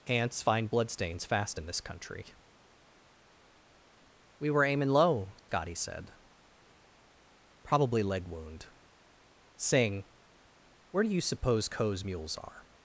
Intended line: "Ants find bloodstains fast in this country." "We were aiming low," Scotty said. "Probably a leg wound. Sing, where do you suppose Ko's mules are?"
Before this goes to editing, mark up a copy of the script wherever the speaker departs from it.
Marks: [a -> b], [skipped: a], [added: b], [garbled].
"Ants find bloodstains fast in this country." "We were aiming low," Scotty said. "Probably [skipped: a] leg wound. Sing, where do you suppose Ko's mules are?"